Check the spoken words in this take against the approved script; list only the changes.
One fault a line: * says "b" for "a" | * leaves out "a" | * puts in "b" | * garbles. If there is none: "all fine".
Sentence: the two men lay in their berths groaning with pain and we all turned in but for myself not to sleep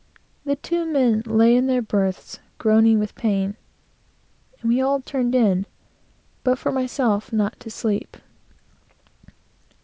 all fine